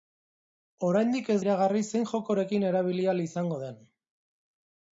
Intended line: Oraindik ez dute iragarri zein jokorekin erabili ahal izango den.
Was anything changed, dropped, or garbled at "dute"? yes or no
yes